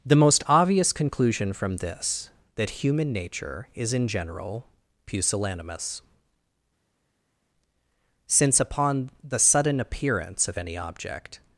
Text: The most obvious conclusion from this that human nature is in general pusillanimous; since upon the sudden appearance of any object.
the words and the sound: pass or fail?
pass